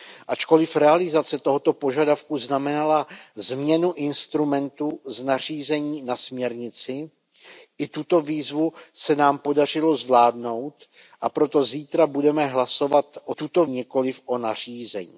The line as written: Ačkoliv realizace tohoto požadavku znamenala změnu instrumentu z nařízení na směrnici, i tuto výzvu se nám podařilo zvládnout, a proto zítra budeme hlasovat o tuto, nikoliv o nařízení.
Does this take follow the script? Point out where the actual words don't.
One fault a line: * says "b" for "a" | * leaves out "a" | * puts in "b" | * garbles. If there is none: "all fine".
all fine